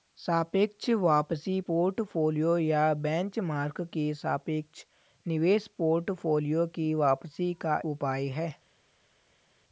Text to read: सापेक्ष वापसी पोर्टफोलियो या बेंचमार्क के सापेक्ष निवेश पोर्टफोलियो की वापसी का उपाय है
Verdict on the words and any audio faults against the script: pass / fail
pass